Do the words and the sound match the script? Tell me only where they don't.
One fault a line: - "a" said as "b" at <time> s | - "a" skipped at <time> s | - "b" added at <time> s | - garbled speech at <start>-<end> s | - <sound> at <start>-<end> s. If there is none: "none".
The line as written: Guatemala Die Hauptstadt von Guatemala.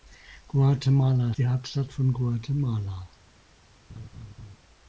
- laugh at 3.9-4.6 s